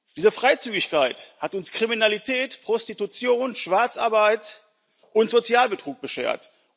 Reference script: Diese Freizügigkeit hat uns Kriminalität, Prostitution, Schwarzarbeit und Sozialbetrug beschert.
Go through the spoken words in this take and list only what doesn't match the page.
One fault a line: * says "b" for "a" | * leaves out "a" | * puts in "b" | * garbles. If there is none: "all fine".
all fine